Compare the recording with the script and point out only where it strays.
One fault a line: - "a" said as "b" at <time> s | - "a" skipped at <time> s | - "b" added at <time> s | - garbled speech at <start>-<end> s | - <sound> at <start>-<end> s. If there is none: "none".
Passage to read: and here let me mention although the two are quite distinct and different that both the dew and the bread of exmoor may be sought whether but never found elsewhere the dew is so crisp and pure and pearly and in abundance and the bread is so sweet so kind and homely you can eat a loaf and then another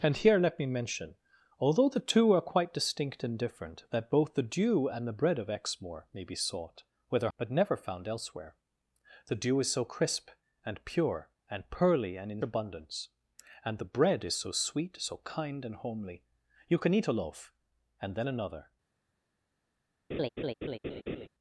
- laugh at 20.1-21.3 s